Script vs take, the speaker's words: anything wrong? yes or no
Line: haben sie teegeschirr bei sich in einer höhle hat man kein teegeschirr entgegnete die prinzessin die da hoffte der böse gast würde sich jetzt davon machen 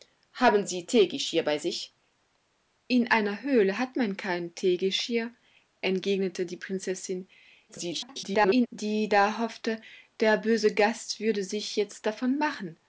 yes